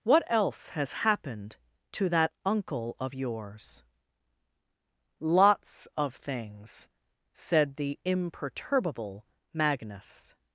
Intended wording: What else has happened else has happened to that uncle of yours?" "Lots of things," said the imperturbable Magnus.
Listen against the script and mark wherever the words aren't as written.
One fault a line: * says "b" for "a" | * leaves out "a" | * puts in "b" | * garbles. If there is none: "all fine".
* leaves out "else has happened"